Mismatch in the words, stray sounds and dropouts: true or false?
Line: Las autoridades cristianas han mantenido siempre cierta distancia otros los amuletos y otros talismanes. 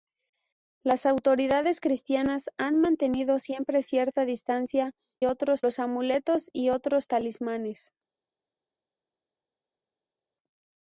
false